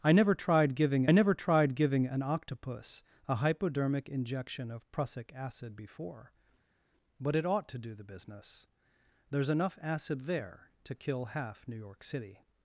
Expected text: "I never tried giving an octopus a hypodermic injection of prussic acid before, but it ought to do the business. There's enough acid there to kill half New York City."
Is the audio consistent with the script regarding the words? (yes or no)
no